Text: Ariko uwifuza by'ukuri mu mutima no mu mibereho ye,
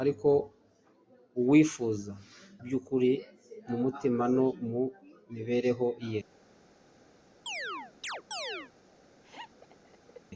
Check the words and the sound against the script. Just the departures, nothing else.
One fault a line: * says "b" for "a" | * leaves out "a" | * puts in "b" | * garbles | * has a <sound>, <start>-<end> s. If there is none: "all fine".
* has a chirp, 7.5-8.7 s
* has a laugh, 9.2-10.2 s